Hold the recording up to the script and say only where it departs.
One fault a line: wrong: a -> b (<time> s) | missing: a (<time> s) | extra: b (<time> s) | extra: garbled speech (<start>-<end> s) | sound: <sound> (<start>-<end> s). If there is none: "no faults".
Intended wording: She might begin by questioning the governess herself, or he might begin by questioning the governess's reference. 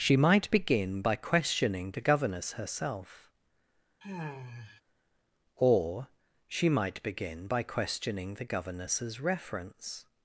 sound: sigh (4.0-4.8 s)
wrong: he -> she (6.5 s)